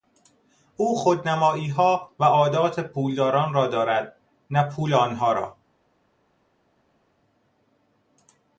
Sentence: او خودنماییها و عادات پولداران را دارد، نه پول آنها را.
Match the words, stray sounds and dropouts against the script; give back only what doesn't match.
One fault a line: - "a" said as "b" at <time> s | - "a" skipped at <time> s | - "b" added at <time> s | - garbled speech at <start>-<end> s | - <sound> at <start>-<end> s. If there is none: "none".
none